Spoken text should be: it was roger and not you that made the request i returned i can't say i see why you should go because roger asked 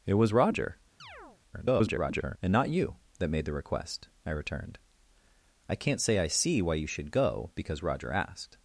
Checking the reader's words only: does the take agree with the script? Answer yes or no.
no